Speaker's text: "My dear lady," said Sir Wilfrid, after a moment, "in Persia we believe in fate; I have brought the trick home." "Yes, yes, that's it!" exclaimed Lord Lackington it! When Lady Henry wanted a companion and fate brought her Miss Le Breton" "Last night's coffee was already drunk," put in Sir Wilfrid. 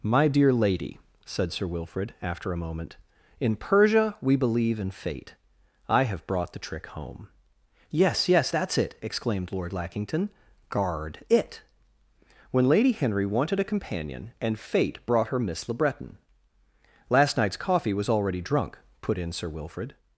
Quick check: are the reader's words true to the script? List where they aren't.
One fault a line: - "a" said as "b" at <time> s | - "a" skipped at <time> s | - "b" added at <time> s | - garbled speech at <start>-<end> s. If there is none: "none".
- "guard" added at 10.7 s